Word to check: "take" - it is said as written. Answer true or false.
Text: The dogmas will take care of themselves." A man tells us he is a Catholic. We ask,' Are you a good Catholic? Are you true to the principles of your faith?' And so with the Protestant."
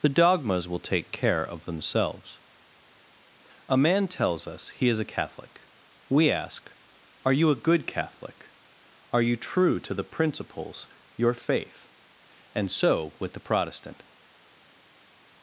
true